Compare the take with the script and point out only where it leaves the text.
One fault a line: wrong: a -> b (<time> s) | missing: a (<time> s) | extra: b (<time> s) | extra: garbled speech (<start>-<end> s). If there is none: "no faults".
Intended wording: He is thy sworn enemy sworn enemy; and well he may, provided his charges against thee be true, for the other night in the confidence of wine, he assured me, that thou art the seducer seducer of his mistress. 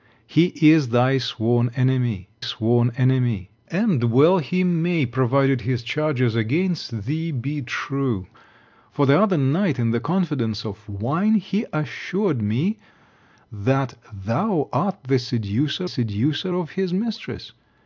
no faults